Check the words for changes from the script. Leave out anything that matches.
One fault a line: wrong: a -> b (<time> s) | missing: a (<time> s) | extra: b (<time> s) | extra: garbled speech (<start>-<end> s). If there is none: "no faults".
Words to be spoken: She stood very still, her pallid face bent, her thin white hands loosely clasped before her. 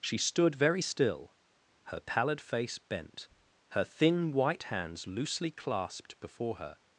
no faults